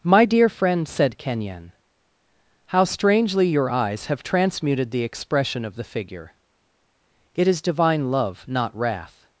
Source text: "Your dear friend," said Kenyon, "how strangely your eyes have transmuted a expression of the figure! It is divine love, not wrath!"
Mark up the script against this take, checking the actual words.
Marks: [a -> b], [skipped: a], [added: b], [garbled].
["Your -> My] dear friend," said Kenyon, "how strangely your eyes have transmuted [a -> the] expression of the figure! It is divine love, not wrath!"